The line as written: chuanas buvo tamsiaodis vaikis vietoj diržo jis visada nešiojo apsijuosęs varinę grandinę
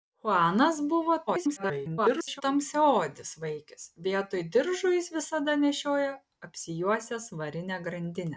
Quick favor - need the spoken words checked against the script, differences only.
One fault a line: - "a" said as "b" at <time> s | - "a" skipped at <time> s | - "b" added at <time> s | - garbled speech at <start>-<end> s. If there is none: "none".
- garbled speech at 1.3-2.4 s